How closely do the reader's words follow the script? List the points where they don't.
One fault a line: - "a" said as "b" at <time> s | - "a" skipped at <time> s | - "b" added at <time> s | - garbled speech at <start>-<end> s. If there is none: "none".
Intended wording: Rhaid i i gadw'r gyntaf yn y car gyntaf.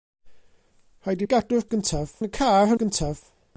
none